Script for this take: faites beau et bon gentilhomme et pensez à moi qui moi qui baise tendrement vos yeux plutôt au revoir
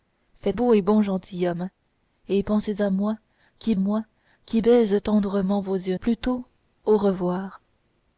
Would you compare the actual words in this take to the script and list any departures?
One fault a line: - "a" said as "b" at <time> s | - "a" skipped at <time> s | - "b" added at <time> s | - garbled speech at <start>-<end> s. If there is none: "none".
none